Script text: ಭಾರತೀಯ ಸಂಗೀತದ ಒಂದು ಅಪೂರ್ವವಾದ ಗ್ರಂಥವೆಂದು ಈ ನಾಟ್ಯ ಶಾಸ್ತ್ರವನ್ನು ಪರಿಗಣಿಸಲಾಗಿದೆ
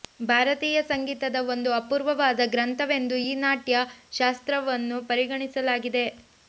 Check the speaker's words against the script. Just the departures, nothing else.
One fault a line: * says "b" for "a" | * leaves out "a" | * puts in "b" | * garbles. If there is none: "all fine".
all fine